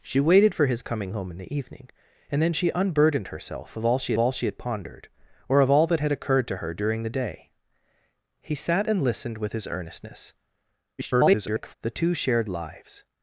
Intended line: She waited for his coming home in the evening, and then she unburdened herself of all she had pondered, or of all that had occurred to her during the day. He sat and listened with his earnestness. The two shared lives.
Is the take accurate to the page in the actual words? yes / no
no